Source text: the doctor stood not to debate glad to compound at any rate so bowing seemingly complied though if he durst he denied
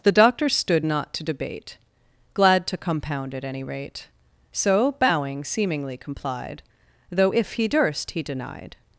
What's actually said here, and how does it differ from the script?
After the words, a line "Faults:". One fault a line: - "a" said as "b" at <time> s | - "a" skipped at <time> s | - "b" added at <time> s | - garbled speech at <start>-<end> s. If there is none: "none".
the doctor stood not to debate glad to compound at any rate so bowing seemingly complied though if he durst he denied
Faults:
none